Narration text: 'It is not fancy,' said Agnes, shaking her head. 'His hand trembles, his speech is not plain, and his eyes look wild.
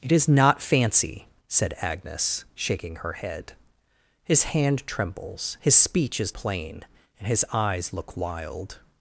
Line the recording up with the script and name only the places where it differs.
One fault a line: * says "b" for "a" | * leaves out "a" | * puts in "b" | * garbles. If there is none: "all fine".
* leaves out "not"